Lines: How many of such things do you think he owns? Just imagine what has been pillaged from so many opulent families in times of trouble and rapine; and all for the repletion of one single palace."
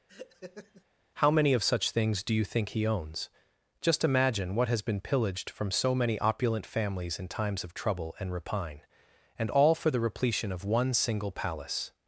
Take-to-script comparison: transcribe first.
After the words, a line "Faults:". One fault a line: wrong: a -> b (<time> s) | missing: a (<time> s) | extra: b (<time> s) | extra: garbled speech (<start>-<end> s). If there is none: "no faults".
How many of such things do you think he owns? Just imagine what has been pillaged from so many opulent families in times of trouble and rapine; and all for the repletion of one single palace."
Faults:
no faults